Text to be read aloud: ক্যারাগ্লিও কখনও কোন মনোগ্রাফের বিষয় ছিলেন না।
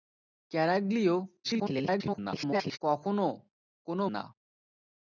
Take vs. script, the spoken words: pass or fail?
fail